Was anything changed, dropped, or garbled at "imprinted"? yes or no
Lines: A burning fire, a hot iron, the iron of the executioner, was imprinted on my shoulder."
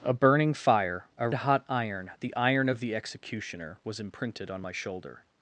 no